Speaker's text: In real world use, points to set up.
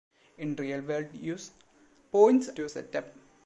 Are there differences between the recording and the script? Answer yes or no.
no